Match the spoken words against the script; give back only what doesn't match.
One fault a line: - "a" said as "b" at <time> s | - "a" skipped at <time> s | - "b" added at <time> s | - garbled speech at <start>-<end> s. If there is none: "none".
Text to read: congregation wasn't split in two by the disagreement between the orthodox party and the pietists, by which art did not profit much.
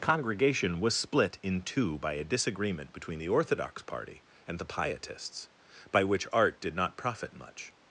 - "wasn't" said as "was" at 0.8 s
- "the" said as "a" at 2.1 s